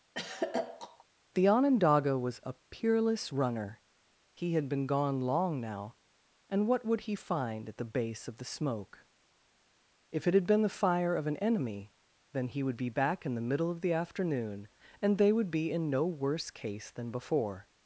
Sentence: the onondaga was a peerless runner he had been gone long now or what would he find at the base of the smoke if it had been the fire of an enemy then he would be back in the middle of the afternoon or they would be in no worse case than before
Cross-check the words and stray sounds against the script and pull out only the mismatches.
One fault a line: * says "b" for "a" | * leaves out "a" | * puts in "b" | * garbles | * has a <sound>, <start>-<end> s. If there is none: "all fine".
* has a throat clearing, 0.1-1.0 s
* says "and" for "or"
* says "and" for "or"